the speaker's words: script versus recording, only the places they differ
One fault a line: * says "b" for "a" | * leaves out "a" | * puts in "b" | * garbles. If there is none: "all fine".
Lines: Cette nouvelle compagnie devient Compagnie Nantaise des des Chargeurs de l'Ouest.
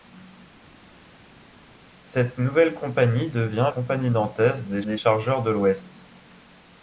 all fine